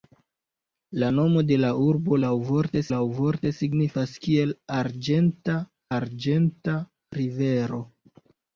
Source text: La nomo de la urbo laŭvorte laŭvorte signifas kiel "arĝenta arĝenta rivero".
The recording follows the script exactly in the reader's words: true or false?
true